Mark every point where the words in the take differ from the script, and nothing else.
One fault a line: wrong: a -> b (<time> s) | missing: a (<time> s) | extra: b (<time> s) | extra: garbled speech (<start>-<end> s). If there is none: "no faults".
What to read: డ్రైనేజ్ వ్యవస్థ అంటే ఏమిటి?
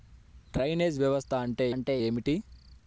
extra: అంటే (1.7 s)